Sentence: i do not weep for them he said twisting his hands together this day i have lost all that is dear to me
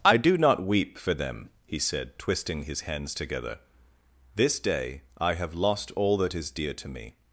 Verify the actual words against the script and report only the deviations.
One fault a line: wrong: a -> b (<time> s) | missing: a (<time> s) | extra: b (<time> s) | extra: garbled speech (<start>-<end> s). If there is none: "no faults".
no faults